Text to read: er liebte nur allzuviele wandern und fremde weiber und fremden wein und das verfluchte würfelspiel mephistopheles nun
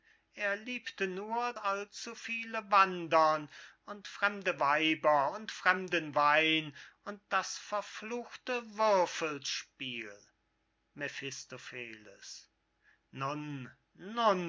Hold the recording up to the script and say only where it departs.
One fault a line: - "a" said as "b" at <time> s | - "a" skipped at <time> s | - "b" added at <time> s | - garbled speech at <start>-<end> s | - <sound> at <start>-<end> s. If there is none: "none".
none